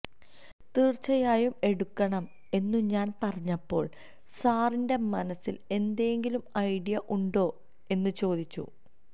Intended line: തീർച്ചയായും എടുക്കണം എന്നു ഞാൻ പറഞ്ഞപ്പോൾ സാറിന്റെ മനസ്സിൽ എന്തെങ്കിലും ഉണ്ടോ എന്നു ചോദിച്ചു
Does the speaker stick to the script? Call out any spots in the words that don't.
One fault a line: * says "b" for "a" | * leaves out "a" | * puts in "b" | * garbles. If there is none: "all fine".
* puts in "ഐഡിയ"